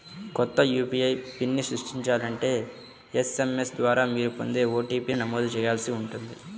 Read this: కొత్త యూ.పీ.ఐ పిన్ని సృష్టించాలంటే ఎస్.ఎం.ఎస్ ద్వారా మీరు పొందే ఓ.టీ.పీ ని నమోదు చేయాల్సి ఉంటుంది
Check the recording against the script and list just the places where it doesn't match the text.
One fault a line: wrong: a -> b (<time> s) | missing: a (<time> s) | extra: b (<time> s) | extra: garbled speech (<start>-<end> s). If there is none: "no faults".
no faults